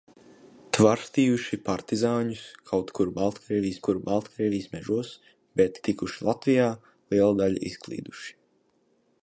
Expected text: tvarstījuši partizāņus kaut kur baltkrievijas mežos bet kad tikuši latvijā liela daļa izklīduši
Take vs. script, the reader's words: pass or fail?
fail